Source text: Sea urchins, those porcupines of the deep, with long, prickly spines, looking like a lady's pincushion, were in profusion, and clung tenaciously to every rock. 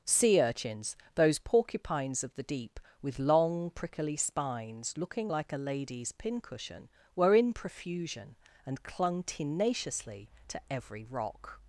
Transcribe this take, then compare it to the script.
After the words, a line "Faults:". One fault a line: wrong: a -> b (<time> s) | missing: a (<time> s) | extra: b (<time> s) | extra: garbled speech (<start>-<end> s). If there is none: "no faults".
Sea urchins, those porcupines of the deep, with long, prickly spines, looking like a lady's pincushion, were in profusion, and clung tenaciously to every rock.
Faults:
no faults